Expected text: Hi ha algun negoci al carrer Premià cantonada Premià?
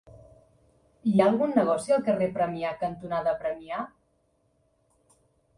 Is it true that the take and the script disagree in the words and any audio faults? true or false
false